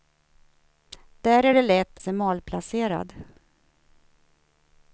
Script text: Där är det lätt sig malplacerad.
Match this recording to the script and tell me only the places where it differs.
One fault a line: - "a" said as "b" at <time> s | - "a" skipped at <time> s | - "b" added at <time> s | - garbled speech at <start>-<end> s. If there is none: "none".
none